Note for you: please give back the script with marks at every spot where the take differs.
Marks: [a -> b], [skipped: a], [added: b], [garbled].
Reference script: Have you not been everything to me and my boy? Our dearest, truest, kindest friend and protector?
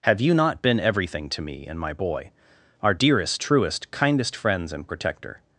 Have you not been everything to me and my boy? Our dearest, truest, kindest [friend -> friends] and protector?